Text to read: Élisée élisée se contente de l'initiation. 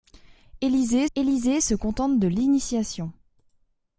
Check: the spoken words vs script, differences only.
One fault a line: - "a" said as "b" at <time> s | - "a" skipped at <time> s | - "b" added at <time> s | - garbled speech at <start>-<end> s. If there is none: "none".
none